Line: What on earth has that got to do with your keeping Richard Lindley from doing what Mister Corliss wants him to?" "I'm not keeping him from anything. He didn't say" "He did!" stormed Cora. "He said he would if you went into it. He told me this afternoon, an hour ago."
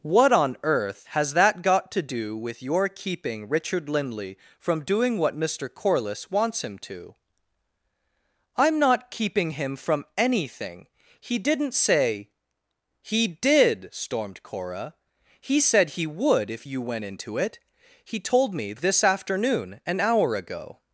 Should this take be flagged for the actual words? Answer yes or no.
no